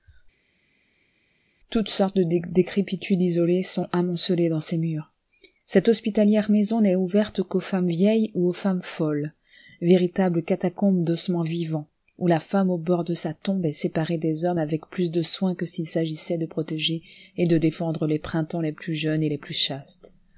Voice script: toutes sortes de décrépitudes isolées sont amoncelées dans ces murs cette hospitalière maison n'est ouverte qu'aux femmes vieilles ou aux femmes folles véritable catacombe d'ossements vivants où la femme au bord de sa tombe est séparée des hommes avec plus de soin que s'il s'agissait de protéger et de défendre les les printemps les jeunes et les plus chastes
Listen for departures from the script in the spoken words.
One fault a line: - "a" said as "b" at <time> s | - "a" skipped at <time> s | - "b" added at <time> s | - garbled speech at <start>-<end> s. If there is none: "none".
- "les" skipped at 18.2 s
- "plus" added at 18.7 s